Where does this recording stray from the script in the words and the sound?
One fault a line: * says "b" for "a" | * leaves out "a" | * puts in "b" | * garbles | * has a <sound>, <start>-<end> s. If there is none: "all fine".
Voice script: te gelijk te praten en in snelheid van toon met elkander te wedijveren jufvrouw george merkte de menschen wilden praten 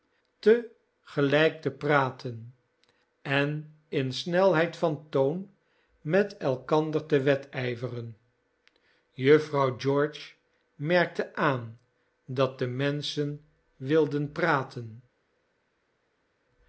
* puts in "aan dat"